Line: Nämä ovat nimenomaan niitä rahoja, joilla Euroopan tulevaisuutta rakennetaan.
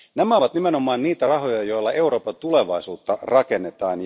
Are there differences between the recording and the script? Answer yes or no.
no